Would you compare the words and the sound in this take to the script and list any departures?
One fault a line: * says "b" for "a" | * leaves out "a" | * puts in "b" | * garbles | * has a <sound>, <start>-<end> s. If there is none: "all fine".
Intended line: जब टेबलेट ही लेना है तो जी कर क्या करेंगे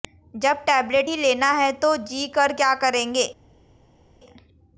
all fine